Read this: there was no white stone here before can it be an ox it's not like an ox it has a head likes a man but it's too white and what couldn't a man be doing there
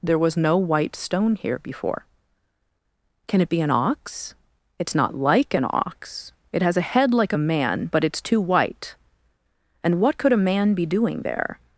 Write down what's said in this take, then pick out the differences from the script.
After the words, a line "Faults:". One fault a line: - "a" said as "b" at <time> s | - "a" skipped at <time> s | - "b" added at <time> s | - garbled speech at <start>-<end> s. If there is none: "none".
there was no white stone here before can it be an ox it's not like an ox it has a head like a man but it's too white and what could a man be doing there
Faults:
- "likes" said as "like" at 7.1 s
- "couldn't" said as "could" at 10.2 s